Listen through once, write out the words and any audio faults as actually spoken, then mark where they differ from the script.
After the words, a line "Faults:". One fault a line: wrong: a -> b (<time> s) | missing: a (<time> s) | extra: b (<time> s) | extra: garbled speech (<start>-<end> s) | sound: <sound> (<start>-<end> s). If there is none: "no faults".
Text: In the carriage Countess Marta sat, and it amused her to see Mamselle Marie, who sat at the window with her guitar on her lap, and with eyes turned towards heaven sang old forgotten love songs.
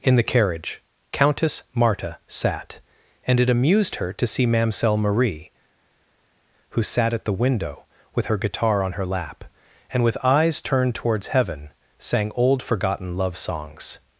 In the carriage Countess Marta sat, and it amused her to see Mamselle Marie, who sat at the window with her guitar on her lap, and with eyes turned towards heaven sang old forgotten love songs.
Faults:
no faults